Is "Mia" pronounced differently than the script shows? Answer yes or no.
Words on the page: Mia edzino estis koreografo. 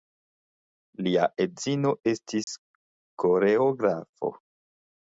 yes